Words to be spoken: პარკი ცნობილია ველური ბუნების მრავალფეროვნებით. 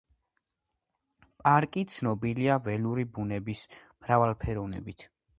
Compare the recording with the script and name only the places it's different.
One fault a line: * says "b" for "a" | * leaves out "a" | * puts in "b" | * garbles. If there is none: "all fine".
all fine